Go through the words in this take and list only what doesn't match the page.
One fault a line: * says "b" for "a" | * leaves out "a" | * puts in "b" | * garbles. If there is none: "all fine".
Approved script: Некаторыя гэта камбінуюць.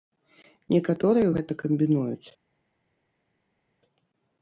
all fine